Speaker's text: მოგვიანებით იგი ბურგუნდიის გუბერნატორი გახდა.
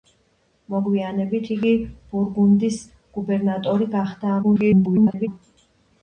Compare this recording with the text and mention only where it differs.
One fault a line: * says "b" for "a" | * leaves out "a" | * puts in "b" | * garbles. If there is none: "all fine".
* garbles